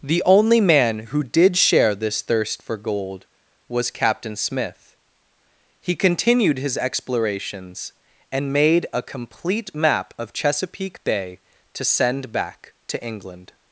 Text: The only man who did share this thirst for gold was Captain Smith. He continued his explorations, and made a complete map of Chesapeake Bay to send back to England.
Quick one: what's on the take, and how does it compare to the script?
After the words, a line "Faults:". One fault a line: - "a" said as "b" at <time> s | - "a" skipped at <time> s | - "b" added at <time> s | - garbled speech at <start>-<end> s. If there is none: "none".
The only man who did share this thirst for gold was Captain Smith. He continued his explorations, and made a complete map of Chesapeake Bay to send back to England.
Faults:
none